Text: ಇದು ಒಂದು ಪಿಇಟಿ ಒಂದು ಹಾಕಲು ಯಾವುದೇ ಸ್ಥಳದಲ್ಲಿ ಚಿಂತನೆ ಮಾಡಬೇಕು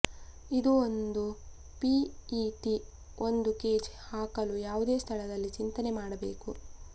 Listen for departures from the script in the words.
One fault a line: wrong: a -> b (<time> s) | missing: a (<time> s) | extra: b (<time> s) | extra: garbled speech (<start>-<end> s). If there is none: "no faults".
extra: ಕೇಜ್ (3.6 s)